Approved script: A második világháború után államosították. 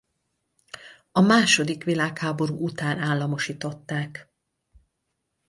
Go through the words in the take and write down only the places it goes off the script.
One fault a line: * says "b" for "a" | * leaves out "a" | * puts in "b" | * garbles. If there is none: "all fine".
all fine